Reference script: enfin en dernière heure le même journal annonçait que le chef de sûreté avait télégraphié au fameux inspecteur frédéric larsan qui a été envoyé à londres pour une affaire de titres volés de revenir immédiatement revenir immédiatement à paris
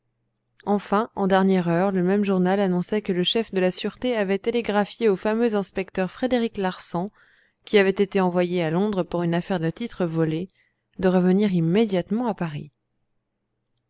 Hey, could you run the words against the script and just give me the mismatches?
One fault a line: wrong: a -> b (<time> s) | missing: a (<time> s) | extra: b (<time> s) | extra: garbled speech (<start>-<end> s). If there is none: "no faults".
extra: la (3.6 s)
wrong: a -> avait (7.8 s)
missing: revenir immédiatement (12.3 s)